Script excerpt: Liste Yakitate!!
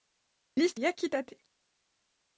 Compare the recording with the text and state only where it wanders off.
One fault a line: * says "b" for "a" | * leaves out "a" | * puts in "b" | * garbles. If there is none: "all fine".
all fine